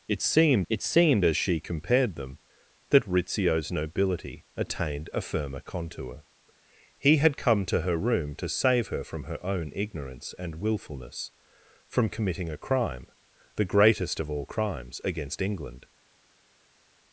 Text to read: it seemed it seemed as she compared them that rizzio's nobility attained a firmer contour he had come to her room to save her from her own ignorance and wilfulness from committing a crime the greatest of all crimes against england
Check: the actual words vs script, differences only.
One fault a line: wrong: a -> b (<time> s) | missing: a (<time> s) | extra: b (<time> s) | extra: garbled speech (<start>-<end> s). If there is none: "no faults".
no faults